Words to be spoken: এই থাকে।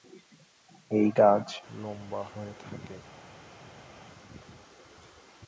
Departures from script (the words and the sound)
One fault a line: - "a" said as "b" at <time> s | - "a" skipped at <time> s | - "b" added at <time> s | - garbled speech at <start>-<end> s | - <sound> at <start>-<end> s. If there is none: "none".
- "গাছ লম্বা হয়ে" added at 1.2 s